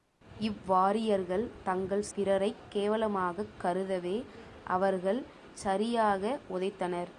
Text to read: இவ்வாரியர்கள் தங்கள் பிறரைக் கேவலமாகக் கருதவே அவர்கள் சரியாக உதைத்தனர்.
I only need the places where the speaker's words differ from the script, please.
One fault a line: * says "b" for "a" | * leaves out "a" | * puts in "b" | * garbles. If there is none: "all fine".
all fine